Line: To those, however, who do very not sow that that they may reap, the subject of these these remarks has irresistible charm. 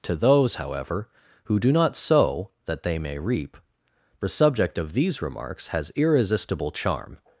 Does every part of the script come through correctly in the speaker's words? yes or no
no